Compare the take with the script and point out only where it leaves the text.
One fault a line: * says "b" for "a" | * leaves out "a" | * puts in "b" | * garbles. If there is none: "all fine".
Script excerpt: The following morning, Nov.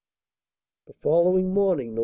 all fine